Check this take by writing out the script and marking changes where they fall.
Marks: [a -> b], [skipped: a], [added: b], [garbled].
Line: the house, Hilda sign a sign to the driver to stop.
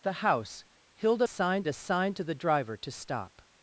the house, Hilda sign a sign to the driver to stop.